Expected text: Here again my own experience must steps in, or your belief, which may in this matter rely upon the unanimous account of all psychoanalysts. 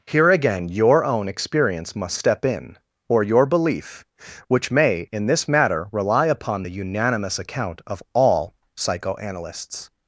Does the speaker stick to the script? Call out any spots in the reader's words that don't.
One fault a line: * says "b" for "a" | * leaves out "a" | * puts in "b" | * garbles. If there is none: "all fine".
* says "your" for "my"
* says "step" for "steps"